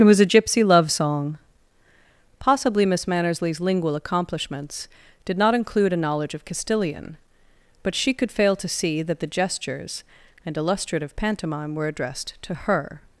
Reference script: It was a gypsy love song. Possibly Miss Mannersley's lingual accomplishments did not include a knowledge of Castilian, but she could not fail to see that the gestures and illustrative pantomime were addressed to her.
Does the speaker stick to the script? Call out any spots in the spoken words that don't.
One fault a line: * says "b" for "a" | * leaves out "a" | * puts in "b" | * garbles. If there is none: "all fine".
* leaves out "not"